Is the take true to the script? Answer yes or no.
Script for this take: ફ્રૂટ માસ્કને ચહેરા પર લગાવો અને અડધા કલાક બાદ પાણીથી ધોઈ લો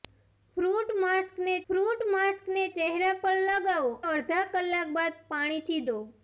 no